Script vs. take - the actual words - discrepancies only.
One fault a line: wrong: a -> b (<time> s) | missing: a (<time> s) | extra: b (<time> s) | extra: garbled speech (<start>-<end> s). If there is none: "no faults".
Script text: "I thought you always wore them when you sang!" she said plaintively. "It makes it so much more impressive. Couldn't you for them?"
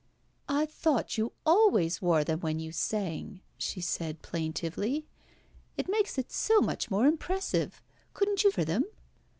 no faults